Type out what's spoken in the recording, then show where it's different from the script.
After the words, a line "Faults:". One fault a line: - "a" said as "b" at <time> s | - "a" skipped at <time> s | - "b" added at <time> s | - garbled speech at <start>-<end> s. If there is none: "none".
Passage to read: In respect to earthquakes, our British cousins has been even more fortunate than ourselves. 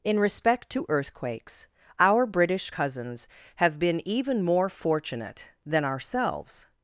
In respect to earthquakes, our British cousins have been even more fortunate than ourselves.
Faults:
- "has" said as "have" at 3.6 s